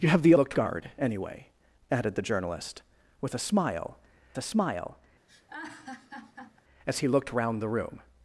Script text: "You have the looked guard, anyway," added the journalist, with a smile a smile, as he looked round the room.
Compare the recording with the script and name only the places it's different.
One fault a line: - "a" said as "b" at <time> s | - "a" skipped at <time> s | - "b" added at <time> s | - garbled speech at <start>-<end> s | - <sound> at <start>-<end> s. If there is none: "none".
- laugh at 5.3-6.6 s